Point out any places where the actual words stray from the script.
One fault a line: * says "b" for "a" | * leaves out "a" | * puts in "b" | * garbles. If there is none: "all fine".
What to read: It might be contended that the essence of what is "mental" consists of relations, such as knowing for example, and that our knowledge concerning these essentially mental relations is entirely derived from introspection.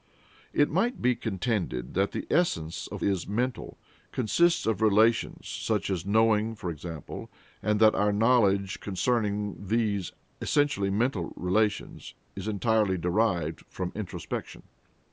* leaves out "what"